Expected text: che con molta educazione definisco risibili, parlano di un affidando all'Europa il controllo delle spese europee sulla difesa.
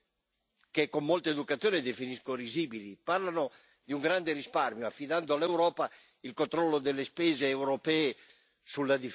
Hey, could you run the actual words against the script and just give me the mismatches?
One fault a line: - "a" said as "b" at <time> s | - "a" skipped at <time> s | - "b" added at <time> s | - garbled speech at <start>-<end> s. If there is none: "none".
- "grande risparmio" added at 4.0 s